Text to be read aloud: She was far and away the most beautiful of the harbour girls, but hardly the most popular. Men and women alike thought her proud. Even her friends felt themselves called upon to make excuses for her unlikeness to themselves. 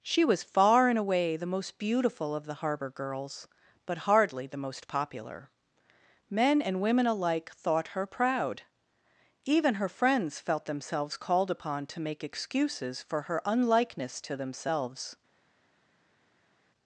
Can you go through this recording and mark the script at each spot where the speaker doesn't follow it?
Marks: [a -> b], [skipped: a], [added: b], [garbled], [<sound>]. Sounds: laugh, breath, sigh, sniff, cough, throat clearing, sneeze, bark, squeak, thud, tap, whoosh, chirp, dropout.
She was far and away the most beautiful of the harbour girls, but hardly the most popular. Men and women alike thought her proud. Even her friends felt themselves called upon to make excuses for her unlikeness to themselves.